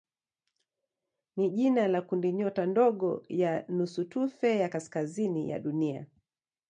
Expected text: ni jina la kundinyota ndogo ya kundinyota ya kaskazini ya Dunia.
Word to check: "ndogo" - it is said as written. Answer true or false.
true